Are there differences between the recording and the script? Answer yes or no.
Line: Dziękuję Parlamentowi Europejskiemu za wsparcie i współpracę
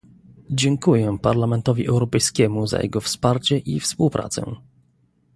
yes